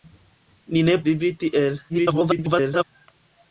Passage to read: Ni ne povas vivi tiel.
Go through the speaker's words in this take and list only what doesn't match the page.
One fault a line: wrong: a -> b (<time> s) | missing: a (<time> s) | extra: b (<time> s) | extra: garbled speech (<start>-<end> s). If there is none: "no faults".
missing: povas (1.0 s)
extra: garbled speech (1.9-2.8 s)